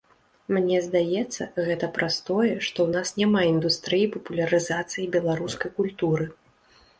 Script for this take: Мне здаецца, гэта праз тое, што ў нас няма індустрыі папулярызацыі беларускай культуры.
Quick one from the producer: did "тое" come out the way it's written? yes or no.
yes